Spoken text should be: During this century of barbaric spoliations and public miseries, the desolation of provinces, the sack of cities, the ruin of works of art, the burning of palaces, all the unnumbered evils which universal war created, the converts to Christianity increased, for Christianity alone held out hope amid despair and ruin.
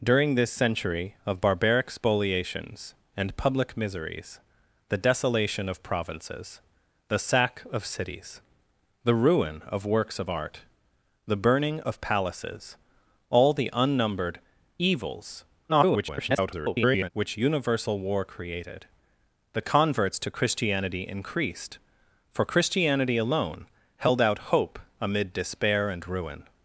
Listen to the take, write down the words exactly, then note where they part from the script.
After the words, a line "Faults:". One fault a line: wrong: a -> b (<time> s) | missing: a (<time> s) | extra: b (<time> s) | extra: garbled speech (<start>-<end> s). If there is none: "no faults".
During this century of barbaric spoliations and public miseries, the desolation of provinces, the sack of cities, the ruin of works of art, the burning of palaces, all the unnumbered evils [garbled] which universal war created, the converts to Christianity increased, for Christianity alone held out hope amid despair and ruin.
Faults:
extra: garbled speech (15.7-17.1 s)